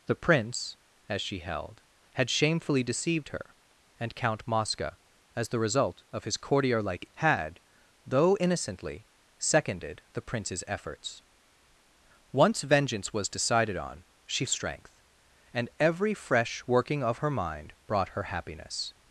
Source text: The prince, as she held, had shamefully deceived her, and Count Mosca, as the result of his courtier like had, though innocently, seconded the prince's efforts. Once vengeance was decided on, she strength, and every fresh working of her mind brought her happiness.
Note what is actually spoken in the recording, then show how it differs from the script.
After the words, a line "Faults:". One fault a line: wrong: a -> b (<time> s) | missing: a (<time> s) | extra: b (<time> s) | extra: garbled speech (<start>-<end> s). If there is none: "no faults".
The prince, as she held, had shamefully deceived her, and Count Mosca, as the result of his courtier like had, though innocently, seconded the prince's efforts. Once vengeance was decided on, she strength, and every fresh working of her mind brought her happiness.
Faults:
no faults